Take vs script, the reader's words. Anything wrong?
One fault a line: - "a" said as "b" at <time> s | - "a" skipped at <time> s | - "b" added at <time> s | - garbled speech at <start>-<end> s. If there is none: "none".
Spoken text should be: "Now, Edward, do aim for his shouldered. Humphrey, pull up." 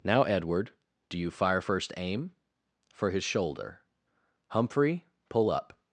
- "you fire first" added at 1.2 s
- "shouldered" said as "shoulder" at 3.2 s